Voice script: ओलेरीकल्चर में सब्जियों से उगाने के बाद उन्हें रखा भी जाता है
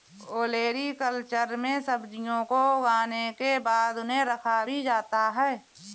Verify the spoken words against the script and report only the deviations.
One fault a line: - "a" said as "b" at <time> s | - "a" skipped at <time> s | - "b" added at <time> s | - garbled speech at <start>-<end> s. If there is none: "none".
- "से" said as "को" at 2.5 s